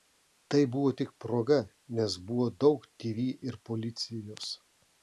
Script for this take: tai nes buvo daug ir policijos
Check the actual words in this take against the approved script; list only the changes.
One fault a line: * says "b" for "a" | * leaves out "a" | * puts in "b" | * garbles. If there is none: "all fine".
* puts in "buvo tik proga"
* puts in "tv"